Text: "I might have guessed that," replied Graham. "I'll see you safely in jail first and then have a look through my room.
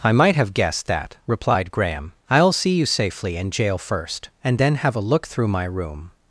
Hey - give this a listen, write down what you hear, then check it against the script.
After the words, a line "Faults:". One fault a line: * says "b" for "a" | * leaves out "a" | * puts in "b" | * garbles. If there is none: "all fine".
"I might have guessed that," replied Graham. "I'll see you safely in jail first and then have a look through my room.
Faults:
all fine